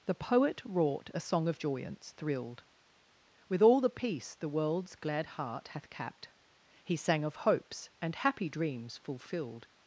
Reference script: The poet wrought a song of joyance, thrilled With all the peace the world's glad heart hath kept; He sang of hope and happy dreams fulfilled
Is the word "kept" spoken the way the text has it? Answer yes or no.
no